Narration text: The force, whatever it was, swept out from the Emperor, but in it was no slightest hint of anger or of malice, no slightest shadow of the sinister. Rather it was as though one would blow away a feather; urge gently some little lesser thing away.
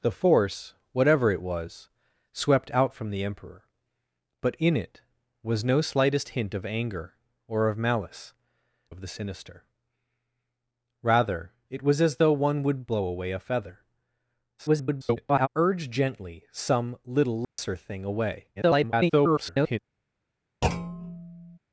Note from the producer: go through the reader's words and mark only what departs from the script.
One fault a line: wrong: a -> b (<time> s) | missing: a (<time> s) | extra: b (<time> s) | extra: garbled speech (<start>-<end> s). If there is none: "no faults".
missing: no slightest shadow (8.3 s)
extra: garbled speech (14.6-15.5 s)
extra: garbled speech (18.6-19.8 s)